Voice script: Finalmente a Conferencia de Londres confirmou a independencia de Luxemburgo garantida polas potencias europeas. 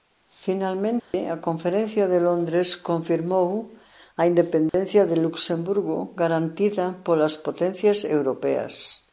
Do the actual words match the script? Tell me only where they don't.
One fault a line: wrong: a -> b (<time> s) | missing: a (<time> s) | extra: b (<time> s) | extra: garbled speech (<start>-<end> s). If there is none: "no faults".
no faults